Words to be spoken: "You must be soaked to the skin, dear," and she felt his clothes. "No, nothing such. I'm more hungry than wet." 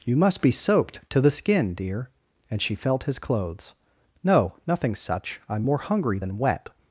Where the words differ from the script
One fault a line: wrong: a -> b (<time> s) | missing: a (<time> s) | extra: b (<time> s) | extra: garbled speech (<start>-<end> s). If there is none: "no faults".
no faults